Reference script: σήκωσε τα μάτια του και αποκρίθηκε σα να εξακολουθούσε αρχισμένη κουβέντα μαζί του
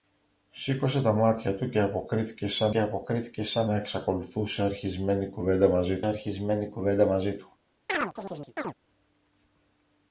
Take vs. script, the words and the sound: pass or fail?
fail